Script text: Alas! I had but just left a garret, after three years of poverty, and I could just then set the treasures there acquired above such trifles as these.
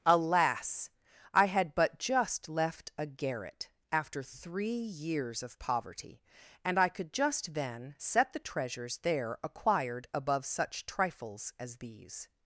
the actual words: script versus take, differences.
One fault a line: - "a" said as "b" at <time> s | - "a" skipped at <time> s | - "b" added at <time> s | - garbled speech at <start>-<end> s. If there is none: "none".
none